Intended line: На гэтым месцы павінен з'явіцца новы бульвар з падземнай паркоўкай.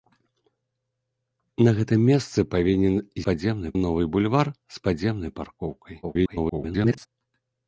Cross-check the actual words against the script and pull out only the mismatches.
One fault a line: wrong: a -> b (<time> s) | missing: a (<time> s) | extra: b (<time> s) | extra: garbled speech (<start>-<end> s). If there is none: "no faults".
wrong: з'явіцца -> падземнай (3.3 s)
extra: garbled speech (6.0-7.1 s)